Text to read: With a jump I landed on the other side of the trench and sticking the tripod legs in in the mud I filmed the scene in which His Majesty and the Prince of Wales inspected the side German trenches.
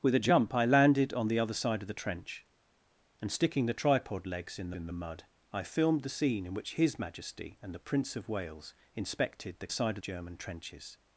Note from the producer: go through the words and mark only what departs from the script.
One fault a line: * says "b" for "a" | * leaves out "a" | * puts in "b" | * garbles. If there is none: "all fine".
all fine